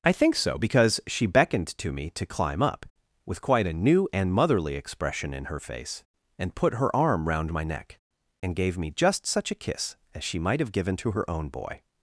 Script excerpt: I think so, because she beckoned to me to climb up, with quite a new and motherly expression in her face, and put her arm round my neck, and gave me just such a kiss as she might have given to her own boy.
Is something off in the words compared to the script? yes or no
no